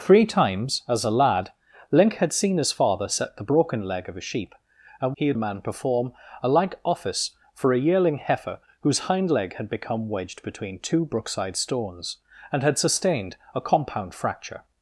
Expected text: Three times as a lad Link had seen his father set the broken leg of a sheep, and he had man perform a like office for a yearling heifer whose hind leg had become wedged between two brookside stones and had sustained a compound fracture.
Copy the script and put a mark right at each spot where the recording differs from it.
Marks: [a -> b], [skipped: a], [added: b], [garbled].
Three times as a lad Link had seen his father set the broken leg of a sheep, and he had man perform a like office for a yearling heifer whose hind leg had become wedged between two brookside stones and had sustained a compound fracture.